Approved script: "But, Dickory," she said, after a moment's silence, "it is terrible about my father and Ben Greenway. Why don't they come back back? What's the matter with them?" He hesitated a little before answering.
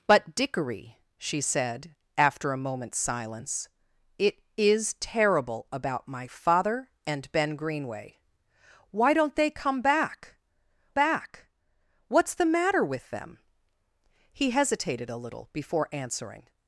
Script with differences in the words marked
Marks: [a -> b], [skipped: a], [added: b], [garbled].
"But, Dickory," she said, after a moment's silence, "it is terrible about my father and Ben Greenway. Why don't they come back back? What's the matter with them?" He hesitated a little before answering.